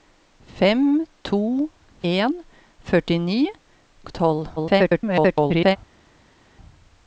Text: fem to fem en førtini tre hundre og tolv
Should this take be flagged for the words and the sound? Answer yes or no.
yes